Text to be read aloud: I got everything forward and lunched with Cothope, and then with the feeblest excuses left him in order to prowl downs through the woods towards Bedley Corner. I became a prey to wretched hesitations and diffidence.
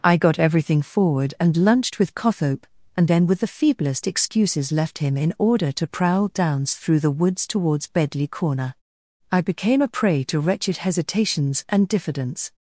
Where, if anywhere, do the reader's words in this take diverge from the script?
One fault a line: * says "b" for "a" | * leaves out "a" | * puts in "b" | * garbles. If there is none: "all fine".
all fine